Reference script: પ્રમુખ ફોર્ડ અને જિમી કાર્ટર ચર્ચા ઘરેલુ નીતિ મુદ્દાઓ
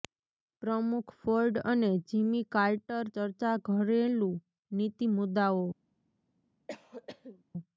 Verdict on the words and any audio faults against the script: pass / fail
fail